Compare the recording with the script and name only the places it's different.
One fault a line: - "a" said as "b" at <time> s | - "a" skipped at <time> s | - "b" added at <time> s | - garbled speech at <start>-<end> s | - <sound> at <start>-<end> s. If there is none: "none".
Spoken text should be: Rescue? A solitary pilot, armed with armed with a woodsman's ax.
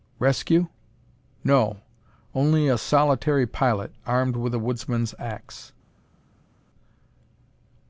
- "No Only" added at 1.4 s
- "armed with" skipped at 4.5 s